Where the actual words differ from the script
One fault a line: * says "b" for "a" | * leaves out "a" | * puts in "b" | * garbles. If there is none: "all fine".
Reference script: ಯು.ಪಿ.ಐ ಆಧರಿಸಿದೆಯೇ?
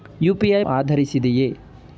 all fine